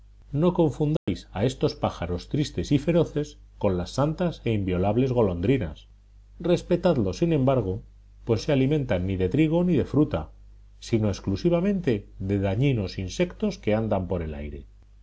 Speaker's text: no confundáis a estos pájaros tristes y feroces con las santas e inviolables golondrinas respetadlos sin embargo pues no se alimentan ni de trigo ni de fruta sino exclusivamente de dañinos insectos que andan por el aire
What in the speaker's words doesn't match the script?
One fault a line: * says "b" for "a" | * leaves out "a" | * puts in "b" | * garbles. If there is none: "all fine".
* leaves out "no"